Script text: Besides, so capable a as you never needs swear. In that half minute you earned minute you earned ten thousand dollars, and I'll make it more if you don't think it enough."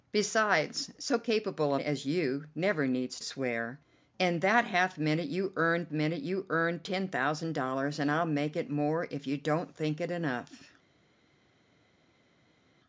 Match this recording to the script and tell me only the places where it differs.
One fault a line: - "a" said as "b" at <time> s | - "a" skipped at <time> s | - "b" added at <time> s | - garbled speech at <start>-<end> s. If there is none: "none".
none